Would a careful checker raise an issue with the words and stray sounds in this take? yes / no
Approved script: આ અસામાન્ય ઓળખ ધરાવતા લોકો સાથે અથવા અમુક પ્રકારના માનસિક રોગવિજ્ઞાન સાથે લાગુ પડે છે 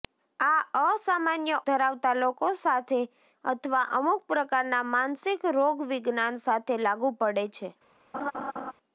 yes